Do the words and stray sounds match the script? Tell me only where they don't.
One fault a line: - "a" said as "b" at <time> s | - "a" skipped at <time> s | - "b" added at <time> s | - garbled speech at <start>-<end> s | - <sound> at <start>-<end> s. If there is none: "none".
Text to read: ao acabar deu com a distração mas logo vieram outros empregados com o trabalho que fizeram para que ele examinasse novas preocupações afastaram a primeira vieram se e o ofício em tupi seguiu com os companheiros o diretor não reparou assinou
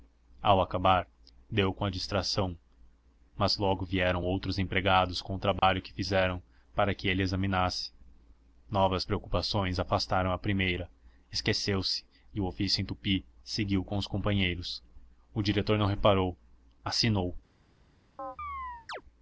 - dropout at 5.6-5.6 s
- "vieram" said as "esqueceu" at 11.3 s
- chirp at 18.2-19.0 s